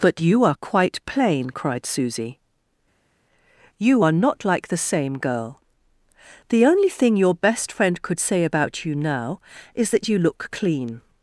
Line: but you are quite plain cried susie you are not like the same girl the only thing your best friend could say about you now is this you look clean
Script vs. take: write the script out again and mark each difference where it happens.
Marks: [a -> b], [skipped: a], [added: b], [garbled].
but you are quite plain cried susie you are not like the same girl the only thing your best friend could say about you now is [this -> that] you look clean